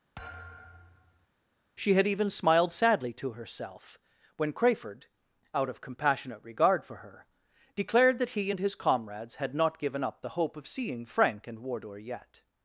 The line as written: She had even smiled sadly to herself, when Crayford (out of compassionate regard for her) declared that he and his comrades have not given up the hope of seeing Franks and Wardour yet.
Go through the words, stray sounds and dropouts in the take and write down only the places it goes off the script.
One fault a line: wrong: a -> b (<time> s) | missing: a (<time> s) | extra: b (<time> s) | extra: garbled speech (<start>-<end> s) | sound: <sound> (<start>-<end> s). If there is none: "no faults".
sound: thud (0.2-1.3 s)
wrong: have -> had (9.4 s)
wrong: Franks -> Frank (11.0 s)